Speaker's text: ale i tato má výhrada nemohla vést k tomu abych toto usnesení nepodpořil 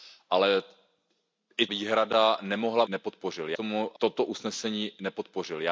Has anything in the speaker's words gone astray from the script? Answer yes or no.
yes